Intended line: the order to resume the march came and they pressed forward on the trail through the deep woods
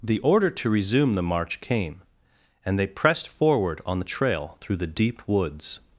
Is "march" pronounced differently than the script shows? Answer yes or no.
no